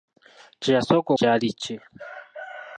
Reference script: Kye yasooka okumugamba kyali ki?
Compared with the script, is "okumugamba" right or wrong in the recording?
wrong